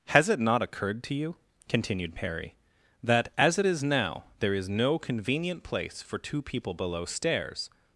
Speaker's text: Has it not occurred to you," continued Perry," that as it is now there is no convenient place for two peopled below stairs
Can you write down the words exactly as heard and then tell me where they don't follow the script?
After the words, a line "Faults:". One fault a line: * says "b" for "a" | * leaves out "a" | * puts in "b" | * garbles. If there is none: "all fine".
Has it not occurred to you," continued Perry," that as it is now there is no convenient place for two people below stairs
Faults:
* says "people" for "peopled"